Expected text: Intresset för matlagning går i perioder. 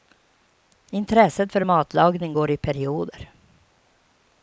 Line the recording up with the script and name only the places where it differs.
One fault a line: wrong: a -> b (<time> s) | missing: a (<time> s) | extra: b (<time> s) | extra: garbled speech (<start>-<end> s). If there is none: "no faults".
no faults